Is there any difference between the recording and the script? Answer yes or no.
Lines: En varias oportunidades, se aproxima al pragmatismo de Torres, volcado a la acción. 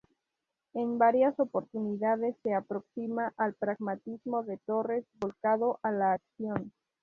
no